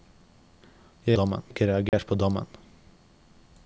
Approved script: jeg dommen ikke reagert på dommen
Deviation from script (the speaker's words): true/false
false